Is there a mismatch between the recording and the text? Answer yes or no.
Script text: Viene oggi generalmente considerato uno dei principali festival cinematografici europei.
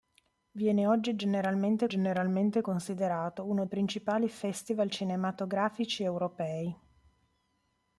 yes